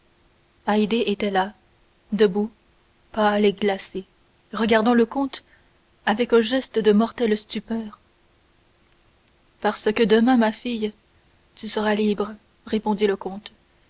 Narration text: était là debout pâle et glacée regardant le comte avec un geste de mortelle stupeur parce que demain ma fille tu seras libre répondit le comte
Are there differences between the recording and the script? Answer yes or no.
no